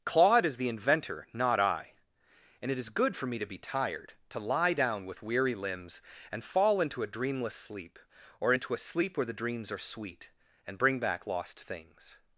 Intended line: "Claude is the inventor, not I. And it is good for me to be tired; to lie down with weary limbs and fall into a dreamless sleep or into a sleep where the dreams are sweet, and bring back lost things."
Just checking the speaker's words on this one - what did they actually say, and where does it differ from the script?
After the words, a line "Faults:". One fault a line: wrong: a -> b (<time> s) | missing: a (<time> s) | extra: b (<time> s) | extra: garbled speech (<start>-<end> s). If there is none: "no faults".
"Claude is the inventor, not I. And it is good for me to be tired; to lie down with weary limbs and fall into a dreamless sleep or into a sleep where the dreams are sweet, and bring back lost things."
Faults:
no faults